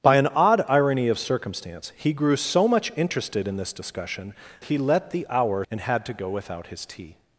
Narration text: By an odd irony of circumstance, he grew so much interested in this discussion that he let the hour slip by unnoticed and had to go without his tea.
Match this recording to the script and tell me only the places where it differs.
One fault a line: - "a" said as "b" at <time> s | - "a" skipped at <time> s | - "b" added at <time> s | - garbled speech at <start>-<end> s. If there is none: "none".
- "that" skipped at 4.3 s
- "slip by unnoticed" skipped at 5.6 s